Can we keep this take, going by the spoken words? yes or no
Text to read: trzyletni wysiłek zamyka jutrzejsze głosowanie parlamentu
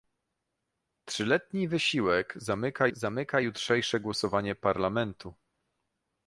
no